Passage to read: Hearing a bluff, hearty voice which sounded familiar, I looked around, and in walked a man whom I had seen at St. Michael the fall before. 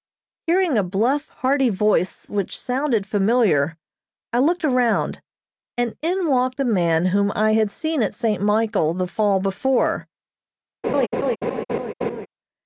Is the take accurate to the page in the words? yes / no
yes